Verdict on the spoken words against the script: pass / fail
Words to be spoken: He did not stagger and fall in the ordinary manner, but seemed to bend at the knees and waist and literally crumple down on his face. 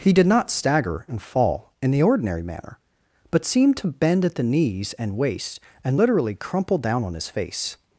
pass